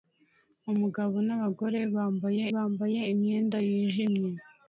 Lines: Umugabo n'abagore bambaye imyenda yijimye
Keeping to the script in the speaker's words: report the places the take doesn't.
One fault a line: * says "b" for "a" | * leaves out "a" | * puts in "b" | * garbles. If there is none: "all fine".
* puts in "bambaye"